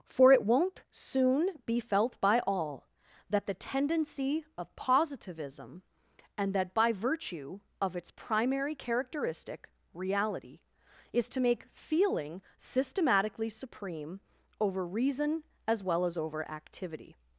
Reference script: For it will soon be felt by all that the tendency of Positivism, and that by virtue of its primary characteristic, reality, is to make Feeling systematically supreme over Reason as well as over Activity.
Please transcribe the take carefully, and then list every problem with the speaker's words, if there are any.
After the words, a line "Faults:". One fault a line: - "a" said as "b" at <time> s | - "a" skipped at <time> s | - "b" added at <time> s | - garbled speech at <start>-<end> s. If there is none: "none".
For it won't soon be felt by all that the tendency of Positivism, and that by virtue of its primary characteristic, reality, is to make Feeling systematically supreme over Reason as well as over Activity.
Faults:
- "will" said as "won't" at 0.4 s